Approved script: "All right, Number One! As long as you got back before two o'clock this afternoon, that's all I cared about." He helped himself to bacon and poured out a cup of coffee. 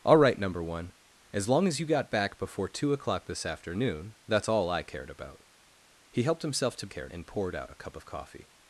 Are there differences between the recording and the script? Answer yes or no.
yes